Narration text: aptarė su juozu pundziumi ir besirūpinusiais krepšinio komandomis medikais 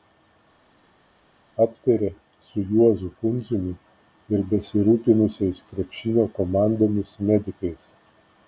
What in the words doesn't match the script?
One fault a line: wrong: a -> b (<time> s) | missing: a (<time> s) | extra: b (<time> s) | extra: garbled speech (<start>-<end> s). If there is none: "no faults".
no faults